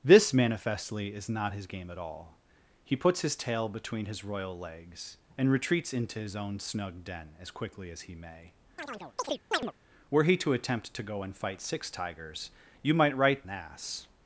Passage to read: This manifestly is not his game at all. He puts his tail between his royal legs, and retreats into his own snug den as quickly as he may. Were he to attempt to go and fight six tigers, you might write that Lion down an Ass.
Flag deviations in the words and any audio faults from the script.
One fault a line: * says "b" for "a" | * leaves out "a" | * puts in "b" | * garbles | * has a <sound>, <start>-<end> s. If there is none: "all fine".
* has a chirp, 8.8-9.7 s
* leaves out "that Lion down"